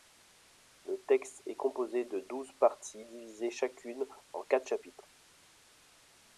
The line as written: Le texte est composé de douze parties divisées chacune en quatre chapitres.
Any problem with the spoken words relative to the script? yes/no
no